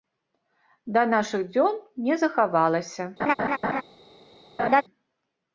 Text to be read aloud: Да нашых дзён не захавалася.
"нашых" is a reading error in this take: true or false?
false